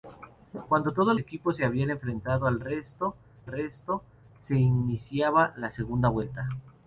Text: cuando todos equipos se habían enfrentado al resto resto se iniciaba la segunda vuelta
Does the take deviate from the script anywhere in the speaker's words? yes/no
no